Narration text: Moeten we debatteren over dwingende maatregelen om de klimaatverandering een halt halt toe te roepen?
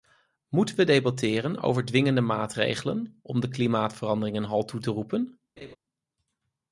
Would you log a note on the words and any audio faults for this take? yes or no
yes